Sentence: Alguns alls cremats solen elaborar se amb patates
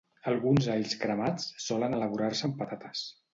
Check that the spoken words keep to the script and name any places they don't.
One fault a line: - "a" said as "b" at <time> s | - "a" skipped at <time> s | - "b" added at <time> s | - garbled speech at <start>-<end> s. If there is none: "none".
none